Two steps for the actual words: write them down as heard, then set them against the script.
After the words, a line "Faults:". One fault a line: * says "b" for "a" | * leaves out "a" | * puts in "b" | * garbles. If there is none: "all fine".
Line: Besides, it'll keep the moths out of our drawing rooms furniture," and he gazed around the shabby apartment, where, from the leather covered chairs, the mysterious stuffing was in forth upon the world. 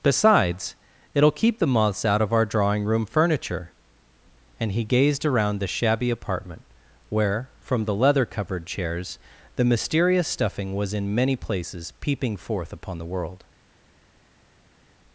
Besides, it'll keep the moths out of our drawing room furniture," and he gazed around the shabby apartment, where, from the leather covered chairs, the mysterious stuffing was in many places peeping forth upon the world.
Faults:
* says "room" for "rooms"
* puts in "many places peeping"